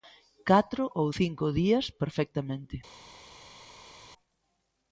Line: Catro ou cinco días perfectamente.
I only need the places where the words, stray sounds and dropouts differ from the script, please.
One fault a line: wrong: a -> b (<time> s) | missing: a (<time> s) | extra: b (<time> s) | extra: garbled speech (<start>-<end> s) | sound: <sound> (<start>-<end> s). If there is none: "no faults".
no faults